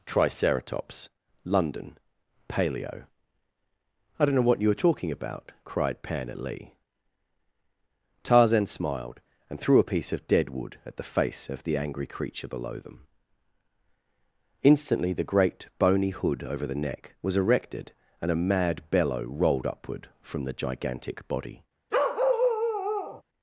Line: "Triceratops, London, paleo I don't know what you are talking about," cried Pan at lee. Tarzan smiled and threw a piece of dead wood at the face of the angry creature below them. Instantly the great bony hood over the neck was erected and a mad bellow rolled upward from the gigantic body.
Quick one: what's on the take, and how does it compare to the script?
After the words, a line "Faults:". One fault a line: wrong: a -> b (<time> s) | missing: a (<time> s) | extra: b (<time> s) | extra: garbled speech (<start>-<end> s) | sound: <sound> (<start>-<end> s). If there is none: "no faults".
"Triceratops, London, paleo I don't know what you are talking about," cried Pan at lee. Tarzan smiled and threw a piece of dead wood at the face of the angry creature below them. Instantly the great bony hood over the neck was erected and a mad bellow rolled upward from the gigantic body.
Faults:
sound: bark (21.9-23.2 s)